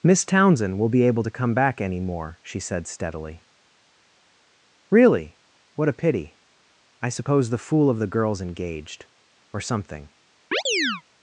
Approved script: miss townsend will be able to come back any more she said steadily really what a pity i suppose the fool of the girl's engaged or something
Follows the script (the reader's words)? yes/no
yes